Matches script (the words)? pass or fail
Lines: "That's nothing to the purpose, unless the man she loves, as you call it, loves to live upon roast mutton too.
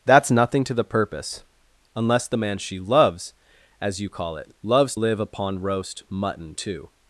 fail